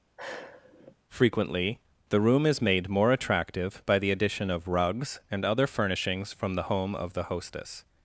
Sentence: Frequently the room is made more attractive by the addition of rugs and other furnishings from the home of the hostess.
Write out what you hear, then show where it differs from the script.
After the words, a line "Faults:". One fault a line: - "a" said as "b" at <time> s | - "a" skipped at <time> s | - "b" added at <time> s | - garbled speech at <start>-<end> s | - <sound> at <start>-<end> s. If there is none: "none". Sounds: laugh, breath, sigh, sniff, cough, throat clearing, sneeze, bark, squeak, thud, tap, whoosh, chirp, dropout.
Frequently the room is made more attractive by the addition of rugs and other furnishings from the home of the hostess.
Faults:
- sigh at 0.2-1.0 s